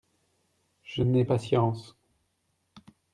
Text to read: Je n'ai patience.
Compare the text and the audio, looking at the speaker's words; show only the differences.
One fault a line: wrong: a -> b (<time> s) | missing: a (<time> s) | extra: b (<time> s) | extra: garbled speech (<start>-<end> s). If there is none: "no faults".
no faults